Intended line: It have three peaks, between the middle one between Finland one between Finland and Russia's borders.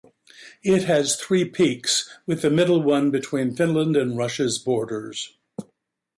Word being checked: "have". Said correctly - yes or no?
no